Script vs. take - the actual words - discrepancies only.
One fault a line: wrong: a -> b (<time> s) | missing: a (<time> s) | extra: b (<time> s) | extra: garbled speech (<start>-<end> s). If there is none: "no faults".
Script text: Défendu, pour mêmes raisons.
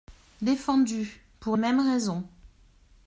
no faults